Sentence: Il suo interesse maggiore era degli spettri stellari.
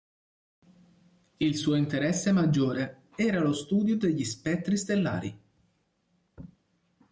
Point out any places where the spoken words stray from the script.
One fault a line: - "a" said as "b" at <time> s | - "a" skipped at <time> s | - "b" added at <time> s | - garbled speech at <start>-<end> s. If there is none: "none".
- "lo studio" added at 3.4 s